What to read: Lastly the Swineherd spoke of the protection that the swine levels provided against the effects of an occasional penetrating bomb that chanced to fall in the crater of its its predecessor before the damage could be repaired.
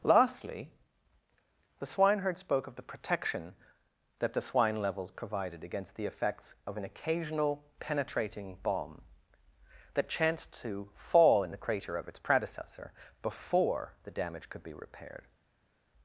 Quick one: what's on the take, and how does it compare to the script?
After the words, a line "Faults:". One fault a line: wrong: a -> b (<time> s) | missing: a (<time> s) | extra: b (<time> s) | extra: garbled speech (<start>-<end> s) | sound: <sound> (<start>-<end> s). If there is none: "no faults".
Lastly the Swineherd spoke of the protection that the swine levels provided against the effects of an occasional penetrating bomb that chanced to fall in the crater of its predecessor before the damage could be repaired.
Faults:
missing: its (12.2 s)